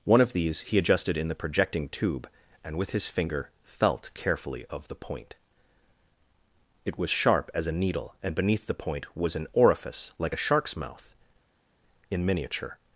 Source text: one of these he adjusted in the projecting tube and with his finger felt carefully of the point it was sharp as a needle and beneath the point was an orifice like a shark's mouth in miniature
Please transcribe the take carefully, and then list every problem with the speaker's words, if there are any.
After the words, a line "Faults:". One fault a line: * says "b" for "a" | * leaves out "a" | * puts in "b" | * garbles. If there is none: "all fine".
one of these he adjusted in the projecting tube and with his finger felt carefully of the point it was sharp as a needle and beneath the point was an orifice like a shark's mouth in miniature
Faults:
all fine